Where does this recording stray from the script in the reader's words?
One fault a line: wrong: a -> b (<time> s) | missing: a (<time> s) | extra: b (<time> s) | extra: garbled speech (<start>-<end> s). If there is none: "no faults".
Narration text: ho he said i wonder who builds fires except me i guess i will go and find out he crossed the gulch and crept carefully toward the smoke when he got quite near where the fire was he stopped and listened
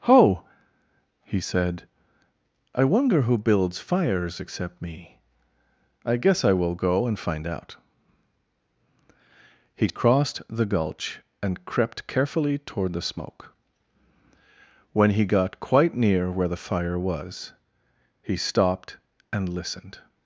no faults